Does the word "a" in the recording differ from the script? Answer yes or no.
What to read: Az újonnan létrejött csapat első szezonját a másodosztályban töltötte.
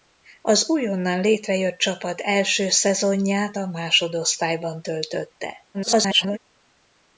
no